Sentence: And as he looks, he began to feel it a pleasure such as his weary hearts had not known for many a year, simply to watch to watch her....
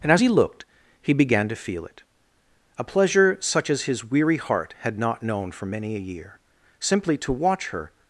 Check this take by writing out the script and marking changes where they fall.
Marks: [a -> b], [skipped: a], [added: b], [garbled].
And as he [looks, -> looked] he began to feel it a pleasure such as his weary [hearts -> heart] had not known for many a year, simply to watch [skipped: to watch] her....